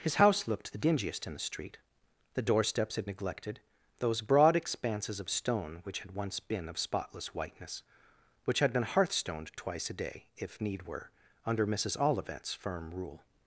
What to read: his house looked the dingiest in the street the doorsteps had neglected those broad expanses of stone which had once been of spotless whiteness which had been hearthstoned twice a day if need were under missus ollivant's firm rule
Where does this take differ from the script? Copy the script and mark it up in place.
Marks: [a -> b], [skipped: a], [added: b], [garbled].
his house looked the dingiest in the street the doorsteps had neglected those broad expanses of stone which had once been of spotless whiteness which had been hearthstoned twice a day if need were under missus ollivant's firm rule